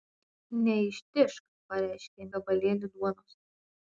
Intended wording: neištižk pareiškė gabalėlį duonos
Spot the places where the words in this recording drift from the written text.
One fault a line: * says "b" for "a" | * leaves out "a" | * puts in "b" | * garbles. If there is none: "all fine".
all fine